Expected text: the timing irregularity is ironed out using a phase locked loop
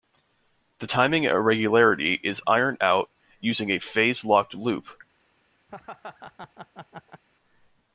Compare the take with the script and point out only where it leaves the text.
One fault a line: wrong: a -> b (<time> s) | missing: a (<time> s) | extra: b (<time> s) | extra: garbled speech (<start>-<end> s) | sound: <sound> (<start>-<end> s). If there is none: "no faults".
sound: laugh (5.7-7.2 s)